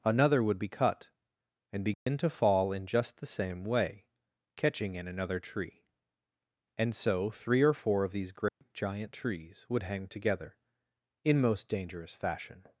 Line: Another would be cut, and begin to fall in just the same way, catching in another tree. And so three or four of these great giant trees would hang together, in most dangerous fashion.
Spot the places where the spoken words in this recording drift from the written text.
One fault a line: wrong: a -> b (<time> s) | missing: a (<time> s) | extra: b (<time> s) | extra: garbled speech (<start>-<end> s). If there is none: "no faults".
no faults